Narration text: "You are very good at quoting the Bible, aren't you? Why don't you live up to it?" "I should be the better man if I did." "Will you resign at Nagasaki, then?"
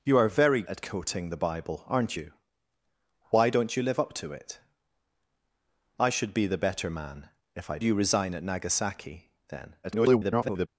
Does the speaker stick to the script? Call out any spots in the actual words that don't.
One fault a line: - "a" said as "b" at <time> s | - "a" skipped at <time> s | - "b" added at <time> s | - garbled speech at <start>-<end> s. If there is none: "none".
- "good" skipped at 0.6 s
- "did Will" skipped at 7.8 s
- garbled speech at 9.8-10.7 s